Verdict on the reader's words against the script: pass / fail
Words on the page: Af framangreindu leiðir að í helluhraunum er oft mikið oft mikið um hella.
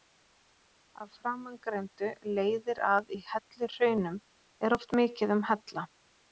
fail